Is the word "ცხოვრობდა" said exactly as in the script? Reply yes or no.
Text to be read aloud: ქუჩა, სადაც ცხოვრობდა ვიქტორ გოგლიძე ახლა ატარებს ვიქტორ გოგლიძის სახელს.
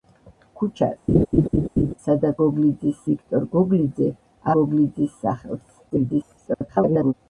no